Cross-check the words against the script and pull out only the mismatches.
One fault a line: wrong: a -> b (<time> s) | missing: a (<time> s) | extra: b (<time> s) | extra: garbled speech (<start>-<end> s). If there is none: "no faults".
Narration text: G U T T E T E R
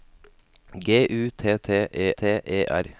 no faults